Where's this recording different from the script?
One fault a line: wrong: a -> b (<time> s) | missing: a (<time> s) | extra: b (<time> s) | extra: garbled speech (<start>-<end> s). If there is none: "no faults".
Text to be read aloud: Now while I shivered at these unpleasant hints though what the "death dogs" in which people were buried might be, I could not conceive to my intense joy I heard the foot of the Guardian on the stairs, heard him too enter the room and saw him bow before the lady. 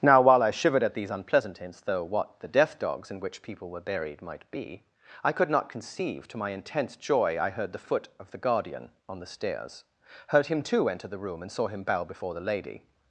no faults